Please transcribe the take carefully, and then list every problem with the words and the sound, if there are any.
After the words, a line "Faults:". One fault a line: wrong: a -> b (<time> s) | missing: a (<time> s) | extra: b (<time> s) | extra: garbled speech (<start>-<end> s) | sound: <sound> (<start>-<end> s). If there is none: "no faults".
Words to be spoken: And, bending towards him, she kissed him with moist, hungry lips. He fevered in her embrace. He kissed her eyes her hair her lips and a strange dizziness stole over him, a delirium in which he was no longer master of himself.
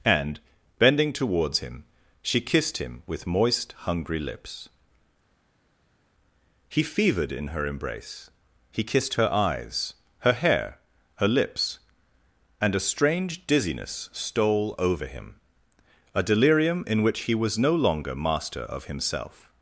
And, bending towards him, she kissed him with moist, hungry lips. He fevered in her embrace. He kissed her eyes her hair her lips and a strange dizziness stole over him, a delirium in which he was no longer master of himself.
Faults:
no faults